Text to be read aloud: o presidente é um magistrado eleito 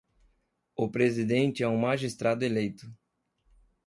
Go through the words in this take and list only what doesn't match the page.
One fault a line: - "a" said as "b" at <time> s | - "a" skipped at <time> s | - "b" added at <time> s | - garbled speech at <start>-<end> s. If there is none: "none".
none